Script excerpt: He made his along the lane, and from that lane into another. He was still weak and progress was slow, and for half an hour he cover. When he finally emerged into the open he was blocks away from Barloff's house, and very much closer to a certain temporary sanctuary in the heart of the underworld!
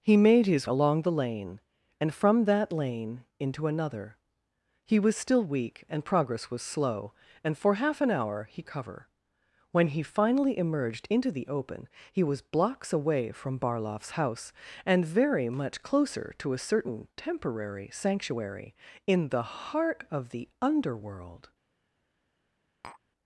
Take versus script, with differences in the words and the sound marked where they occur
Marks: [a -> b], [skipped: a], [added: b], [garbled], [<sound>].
He made his along the lane, and from that lane into another. He was still weak and progress was slow, and for half an hour he cover. When he finally emerged into the open he was blocks away from Barloff's house, and very much closer to a certain temporary sanctuary in the heart of the underworld! [tap]